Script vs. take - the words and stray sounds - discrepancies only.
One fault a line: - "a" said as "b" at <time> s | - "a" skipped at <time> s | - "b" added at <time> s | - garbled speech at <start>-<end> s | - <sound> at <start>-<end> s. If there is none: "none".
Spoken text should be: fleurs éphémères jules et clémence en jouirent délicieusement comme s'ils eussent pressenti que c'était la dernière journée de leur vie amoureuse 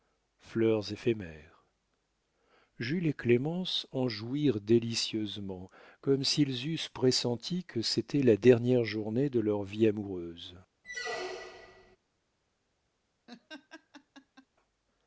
- squeak at 10.8-12.0 s
- laugh at 13.3-14.5 s